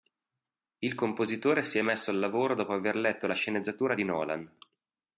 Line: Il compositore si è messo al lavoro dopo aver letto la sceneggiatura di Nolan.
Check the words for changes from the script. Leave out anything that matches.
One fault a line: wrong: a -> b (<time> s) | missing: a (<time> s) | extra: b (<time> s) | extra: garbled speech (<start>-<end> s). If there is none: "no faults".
no faults